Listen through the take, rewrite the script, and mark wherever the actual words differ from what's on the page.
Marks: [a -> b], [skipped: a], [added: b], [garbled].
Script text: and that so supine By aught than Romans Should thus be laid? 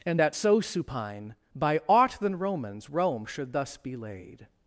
and that so supine By aught than Romans [added: Rome] Should thus be laid?